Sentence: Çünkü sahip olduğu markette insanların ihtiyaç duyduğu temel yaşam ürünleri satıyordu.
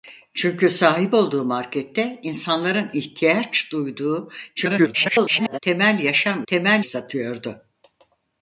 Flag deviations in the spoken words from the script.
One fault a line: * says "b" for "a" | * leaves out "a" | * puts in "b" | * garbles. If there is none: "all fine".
* garbles
* says "temel" for "ürünleri"